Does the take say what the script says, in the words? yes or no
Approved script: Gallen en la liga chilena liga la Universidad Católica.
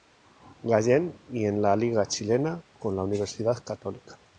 no